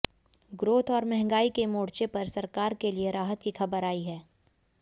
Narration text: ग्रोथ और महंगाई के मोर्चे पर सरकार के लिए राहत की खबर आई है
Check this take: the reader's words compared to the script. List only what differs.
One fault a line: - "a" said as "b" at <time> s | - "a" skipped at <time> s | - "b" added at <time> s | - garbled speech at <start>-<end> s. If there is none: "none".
none